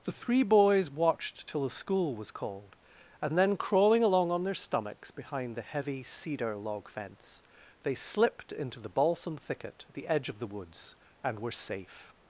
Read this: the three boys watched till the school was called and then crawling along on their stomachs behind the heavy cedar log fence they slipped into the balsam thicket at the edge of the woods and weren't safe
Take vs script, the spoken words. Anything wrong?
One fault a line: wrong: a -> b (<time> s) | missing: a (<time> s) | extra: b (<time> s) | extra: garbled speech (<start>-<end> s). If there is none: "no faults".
wrong: weren't -> were (11.4 s)